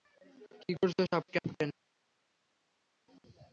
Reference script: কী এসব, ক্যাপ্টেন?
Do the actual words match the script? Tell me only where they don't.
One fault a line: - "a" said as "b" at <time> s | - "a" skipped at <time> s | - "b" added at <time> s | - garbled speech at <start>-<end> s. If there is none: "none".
- "করছো" added at 0.8 s